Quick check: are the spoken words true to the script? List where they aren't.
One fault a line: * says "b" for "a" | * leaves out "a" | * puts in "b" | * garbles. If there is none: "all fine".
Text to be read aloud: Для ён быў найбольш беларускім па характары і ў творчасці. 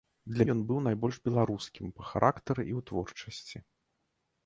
all fine